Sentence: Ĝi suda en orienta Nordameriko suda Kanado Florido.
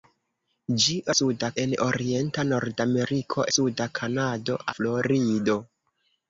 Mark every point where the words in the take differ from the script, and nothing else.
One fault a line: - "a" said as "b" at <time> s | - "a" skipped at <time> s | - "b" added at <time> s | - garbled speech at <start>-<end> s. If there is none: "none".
none